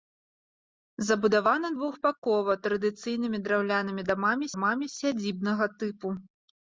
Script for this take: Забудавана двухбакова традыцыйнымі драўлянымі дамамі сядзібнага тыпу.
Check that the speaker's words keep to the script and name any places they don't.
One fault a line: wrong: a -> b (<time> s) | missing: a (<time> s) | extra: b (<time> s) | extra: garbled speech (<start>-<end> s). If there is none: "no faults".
extra: дамамі (4.5 s)